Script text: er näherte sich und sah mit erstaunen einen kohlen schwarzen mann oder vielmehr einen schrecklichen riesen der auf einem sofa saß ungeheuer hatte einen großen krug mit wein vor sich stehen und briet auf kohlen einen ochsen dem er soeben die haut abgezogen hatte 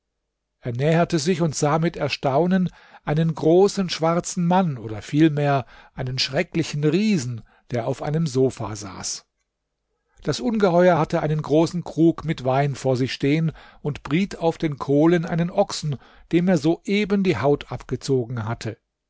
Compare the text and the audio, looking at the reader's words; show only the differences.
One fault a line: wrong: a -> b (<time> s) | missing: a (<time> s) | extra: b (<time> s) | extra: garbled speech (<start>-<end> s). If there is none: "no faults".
wrong: kohlen -> großen (3.4 s)
extra: das (10.2 s)
extra: den (14.6 s)